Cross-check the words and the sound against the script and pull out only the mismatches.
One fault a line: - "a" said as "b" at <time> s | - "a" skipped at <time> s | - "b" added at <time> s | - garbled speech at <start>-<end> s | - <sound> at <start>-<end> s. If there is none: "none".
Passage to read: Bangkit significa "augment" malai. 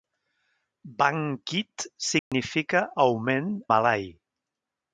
- dropout at 2.2-2.3 s